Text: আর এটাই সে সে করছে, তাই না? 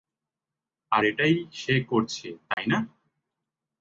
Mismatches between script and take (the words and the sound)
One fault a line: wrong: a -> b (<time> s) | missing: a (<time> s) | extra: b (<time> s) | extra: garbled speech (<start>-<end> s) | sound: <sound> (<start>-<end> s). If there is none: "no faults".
missing: সে (1.7 s)
sound: dropout (2.5-2.6 s)